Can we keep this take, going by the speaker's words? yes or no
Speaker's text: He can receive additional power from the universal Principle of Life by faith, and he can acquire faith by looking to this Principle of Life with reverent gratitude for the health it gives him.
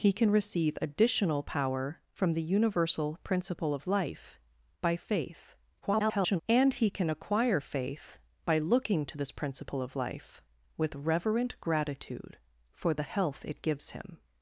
no